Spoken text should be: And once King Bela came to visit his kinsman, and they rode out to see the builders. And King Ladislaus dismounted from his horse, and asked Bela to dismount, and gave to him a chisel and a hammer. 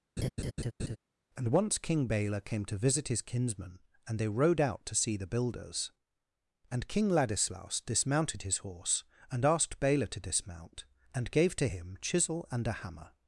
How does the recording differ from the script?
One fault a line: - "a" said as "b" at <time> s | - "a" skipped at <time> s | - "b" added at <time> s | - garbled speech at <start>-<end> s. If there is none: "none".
- "from" skipped at 8.4 s
- "a" skipped at 12.0 s